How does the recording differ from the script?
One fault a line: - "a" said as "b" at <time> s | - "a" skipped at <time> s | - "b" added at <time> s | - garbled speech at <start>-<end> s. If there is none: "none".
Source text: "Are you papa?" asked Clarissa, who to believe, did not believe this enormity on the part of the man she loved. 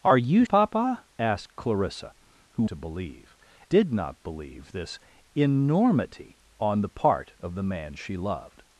none